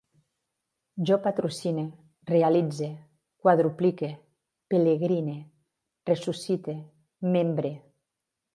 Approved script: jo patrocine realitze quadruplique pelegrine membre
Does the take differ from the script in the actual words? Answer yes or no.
yes